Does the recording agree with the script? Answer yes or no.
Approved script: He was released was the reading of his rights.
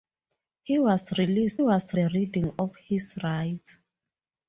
yes